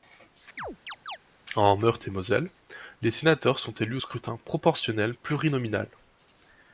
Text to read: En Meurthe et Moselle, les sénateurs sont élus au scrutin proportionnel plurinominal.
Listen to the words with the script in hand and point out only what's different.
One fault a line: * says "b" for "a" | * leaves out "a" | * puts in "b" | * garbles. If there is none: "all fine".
all fine